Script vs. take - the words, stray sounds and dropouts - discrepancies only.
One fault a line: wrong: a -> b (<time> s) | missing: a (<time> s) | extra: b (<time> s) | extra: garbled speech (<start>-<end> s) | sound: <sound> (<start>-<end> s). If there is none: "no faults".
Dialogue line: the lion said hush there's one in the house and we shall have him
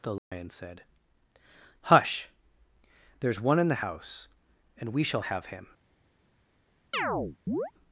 sound: dropout (0.2-0.3 s)
sound: chirp (6.9-7.7 s)